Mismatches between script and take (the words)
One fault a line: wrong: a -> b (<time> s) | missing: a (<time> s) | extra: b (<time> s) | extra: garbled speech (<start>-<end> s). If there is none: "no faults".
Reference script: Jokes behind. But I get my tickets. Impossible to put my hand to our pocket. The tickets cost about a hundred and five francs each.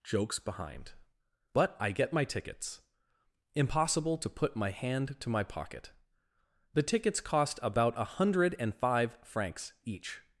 wrong: our -> my (5.3 s)